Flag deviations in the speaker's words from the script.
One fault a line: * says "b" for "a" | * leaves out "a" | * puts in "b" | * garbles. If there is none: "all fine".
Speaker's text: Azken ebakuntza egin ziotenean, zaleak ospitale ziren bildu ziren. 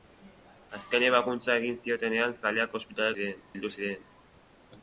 all fine